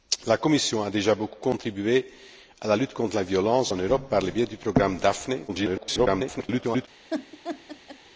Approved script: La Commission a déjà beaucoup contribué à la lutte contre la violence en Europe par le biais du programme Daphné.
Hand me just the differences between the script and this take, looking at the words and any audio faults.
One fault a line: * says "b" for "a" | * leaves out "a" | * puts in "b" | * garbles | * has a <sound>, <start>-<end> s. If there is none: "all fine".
* garbles
* has a laugh, 7.1-8.0 s